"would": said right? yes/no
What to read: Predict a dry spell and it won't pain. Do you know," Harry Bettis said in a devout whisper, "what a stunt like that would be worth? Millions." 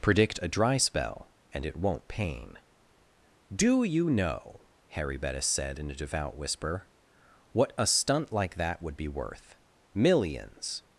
yes